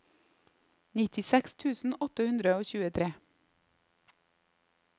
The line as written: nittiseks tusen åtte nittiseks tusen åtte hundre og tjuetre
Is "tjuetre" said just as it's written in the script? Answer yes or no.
yes